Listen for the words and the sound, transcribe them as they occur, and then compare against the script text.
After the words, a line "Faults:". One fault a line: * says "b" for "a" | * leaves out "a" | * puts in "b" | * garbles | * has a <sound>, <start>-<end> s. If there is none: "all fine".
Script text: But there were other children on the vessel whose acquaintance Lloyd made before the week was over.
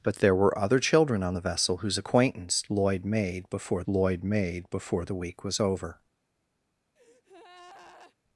But there were other children on the vessel whose acquaintance Lloyd made before Lloyd made before the week was over.
Faults:
* puts in "Lloyd made before"
* has a breath, 7.0-8.2 s